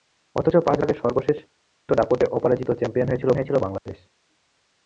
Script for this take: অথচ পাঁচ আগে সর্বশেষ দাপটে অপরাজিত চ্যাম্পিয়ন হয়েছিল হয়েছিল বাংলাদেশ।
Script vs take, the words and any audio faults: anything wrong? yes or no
yes